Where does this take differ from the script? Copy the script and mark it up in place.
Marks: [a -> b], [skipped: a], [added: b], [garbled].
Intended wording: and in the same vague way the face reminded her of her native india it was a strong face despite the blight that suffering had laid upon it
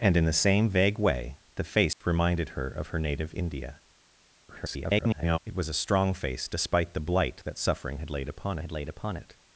and in the same vague way the face reminded her of her native india [garbled] it was a strong face despite the blight that suffering had laid upon [added: had laid upon] it